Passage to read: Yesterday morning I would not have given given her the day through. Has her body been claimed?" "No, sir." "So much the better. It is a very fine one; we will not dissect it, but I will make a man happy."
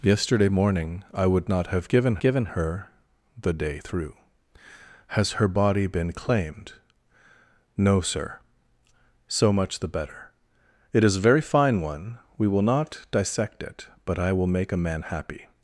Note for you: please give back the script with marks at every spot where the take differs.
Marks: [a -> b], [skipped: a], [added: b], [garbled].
Yesterday morning I would not have given given her the day through. Has her body been claimed?" "No, sir." "So much the better. It is a very fine one; we will not dissect it, but I will make a man happy."